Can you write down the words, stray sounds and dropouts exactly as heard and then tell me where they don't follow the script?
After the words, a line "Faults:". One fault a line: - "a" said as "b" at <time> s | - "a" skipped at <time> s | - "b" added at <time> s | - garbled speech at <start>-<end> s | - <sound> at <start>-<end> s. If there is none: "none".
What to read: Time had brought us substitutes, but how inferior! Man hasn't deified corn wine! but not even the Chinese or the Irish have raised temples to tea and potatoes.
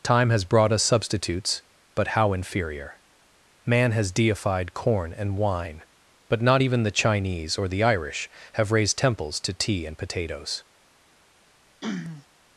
Time has brought us substitutes, but how inferior! Man has deified corn and wine! but not even the Chinese or the Irish have raised temples to tea and potatoes.
Faults:
- "had" said as "has" at 0.3 s
- "hasn't" said as "has" at 3.9 s
- "and" added at 5.1 s
- throat clearing at 11.8-12.3 s